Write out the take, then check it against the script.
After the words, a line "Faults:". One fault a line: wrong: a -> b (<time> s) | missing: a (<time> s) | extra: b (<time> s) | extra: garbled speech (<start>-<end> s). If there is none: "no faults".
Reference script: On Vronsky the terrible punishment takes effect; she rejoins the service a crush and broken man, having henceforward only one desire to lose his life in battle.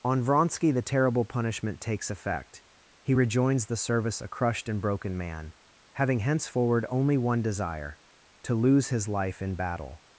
On Vronsky the terrible punishment takes effect; he rejoins the service a crushed and broken man, having henceforward only one desire to lose his life in battle.
Faults:
wrong: she -> he (3.0 s)
wrong: crush -> crushed (4.3 s)